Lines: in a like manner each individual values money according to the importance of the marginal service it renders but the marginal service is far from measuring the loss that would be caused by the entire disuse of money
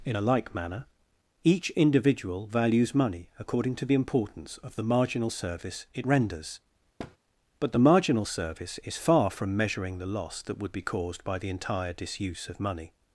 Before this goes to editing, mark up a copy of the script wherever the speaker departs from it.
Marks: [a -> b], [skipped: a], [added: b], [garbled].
in a like manner each individual values money according to the importance of the marginal service it renders but the marginal service is far from measuring the loss that would be caused by the entire disuse of money